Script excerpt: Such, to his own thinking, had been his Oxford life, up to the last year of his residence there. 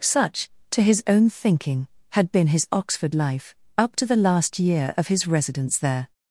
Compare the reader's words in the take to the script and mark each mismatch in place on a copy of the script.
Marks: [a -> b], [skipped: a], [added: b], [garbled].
Such, to his own thinking, had been his Oxford life, up to the last year of his residence there.